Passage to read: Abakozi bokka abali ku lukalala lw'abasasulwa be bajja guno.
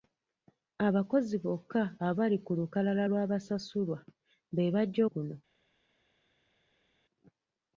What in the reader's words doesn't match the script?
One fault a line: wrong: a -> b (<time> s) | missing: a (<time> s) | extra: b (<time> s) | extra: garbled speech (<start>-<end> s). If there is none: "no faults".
no faults